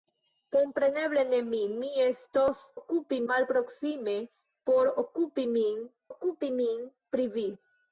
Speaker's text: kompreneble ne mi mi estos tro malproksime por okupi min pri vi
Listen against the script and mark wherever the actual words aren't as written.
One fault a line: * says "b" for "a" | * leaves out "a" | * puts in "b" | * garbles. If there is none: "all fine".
* says "okupi" for "tro"
* puts in "okupi min"